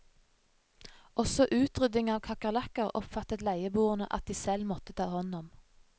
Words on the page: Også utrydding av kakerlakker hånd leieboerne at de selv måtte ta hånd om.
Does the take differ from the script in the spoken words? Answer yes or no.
yes